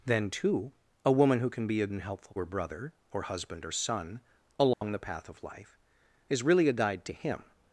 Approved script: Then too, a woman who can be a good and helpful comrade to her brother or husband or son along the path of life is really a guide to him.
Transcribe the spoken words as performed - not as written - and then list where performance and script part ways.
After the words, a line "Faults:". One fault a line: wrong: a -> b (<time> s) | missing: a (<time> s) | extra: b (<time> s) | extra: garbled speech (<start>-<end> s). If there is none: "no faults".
Then too, a woman who can be a and helpful her brother or husband or son along the path of life is really a guide to him.
Faults:
missing: good (1.9 s)
missing: comrade to (2.3 s)